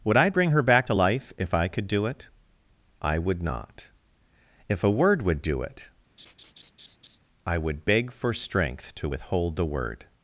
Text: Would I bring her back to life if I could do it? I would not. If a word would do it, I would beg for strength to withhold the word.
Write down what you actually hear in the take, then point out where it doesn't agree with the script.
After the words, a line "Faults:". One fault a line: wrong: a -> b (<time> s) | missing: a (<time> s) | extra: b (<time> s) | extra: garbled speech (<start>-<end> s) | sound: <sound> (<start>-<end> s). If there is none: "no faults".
Would I bring her back to life if I could do it? I would not. If a word would do it, I would beg for strength to withhold the word.
Faults:
sound: laugh (6.2-7.2 s)